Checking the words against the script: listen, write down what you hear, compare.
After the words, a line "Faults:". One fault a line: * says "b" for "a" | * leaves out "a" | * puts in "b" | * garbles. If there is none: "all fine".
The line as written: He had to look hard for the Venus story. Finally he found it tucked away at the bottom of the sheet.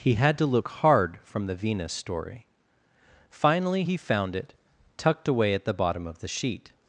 He had to look hard from the Venus story. Finally he found it tucked away at the bottom of the sheet.
Faults:
* says "from" for "for"